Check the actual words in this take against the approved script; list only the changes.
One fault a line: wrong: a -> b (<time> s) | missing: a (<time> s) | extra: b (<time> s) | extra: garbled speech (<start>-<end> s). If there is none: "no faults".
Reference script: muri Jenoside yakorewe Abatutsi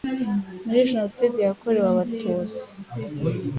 no faults